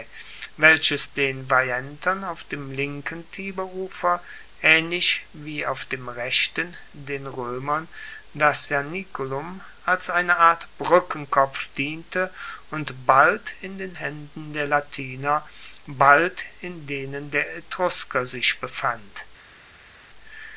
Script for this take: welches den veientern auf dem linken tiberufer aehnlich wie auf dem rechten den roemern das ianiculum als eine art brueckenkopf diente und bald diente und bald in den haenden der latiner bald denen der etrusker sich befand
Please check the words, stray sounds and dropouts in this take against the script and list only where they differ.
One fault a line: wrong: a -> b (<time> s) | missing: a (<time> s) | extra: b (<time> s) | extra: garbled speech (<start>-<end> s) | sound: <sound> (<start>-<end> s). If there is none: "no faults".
missing: diente und bald (13.5 s)
extra: in (16.6 s)